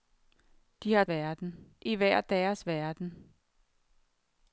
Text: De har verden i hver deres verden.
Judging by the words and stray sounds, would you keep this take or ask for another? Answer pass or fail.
pass